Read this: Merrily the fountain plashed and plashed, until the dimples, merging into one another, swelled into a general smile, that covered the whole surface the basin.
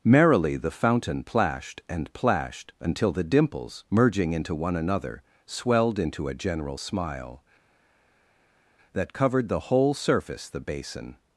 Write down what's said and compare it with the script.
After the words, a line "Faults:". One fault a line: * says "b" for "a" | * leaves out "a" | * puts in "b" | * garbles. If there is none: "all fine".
Merrily the fountain plashed and plashed, until the dimples, merging into one another, swelled into a general smile, that covered the whole surface the basin.
Faults:
all fine